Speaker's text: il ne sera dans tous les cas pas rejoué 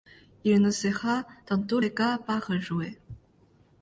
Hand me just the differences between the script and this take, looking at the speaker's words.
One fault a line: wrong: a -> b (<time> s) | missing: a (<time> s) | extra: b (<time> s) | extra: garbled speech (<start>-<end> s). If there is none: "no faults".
no faults